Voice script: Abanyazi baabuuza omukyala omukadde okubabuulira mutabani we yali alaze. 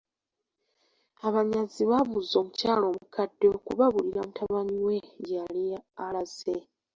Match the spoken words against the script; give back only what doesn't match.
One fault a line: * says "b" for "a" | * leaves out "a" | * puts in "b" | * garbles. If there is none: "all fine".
* puts in "gye"